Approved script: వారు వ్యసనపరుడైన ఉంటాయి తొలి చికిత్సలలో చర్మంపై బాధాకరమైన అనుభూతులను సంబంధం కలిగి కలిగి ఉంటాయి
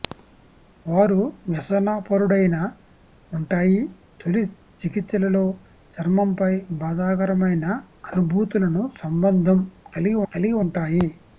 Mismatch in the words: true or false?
false